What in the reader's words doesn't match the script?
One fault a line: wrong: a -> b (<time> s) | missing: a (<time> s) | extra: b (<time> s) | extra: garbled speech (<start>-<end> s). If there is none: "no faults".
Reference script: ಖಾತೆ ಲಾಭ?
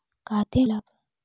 no faults